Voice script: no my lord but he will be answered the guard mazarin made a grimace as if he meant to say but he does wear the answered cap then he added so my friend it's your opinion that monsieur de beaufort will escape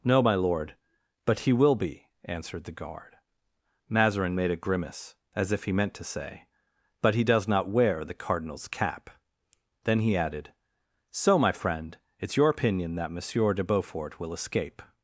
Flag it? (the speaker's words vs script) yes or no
yes